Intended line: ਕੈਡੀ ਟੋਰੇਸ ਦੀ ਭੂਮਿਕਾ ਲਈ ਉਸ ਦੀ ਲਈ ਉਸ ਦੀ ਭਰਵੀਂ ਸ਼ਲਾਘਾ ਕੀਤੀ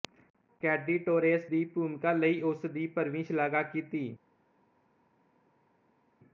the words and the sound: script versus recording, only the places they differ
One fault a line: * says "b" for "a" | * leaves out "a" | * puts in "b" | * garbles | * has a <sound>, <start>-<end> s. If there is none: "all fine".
* leaves out "ਲਈ ਉਸ ਦੀ"